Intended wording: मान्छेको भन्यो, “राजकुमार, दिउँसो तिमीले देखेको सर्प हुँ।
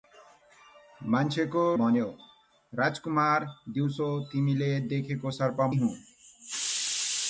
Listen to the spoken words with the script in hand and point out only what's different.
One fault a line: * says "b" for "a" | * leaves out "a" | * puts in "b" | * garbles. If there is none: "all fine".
all fine